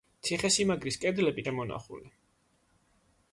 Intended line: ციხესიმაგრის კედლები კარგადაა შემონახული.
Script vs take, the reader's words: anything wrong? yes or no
yes